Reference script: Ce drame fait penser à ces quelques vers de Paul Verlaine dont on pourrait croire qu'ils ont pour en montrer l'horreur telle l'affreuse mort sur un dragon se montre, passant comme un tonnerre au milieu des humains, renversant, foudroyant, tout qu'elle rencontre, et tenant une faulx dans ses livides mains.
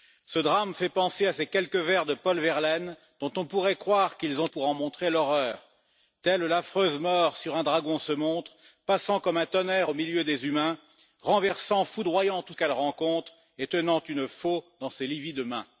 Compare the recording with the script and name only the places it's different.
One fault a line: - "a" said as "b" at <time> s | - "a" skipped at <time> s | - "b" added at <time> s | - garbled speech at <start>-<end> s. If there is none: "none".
none